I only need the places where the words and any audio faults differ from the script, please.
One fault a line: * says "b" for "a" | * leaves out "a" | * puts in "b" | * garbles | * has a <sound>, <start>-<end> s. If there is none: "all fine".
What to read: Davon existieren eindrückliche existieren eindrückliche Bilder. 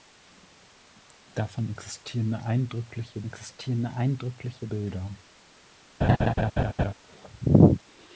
* has a laugh, 6.0-6.9 s